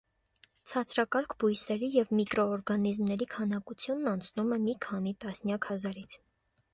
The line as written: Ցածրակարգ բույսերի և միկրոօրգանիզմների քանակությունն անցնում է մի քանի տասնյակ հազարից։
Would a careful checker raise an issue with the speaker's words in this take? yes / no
no